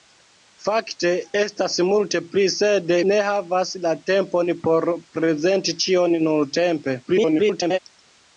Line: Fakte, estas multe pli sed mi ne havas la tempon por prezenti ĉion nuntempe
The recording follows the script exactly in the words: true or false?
false